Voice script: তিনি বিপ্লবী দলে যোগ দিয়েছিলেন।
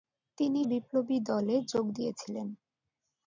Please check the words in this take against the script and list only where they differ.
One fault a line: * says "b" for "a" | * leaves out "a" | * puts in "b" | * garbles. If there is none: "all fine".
all fine